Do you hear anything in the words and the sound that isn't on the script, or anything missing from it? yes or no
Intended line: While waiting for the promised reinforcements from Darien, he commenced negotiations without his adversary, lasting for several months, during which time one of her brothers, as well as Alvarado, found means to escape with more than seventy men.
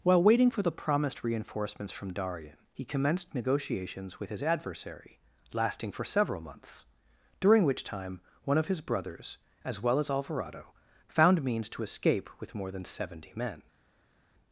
yes